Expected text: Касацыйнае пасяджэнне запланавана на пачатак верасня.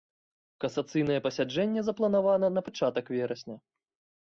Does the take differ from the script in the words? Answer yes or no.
no